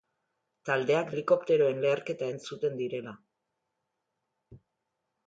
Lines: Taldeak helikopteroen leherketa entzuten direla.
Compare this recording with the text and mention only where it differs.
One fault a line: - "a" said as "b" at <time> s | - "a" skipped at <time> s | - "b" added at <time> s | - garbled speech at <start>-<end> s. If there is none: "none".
none